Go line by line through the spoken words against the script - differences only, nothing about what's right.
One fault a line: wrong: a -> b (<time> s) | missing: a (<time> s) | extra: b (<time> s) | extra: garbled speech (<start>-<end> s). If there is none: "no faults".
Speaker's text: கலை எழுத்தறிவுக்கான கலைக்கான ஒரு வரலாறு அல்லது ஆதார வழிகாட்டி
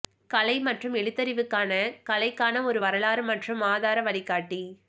extra: மற்றும் (0.6 s)
wrong: அல்லது -> மற்றும் (3.3 s)